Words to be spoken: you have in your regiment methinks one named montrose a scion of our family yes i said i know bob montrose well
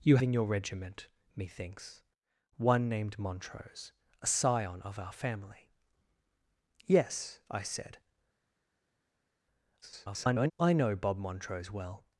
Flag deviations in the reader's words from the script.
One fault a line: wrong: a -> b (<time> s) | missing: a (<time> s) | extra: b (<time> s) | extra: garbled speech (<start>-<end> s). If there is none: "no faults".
missing: have (0.2 s)
extra: garbled speech (9.8-10.5 s)